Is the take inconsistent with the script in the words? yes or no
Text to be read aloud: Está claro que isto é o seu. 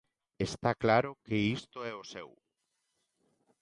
no